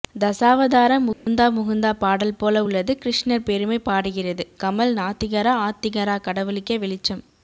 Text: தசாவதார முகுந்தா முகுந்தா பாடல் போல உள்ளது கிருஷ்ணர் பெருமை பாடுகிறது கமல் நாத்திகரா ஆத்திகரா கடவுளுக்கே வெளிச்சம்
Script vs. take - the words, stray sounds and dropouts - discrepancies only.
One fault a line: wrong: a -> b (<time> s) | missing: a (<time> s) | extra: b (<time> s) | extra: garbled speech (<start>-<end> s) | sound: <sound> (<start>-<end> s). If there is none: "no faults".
sound: dropout (1.1-1.3 s)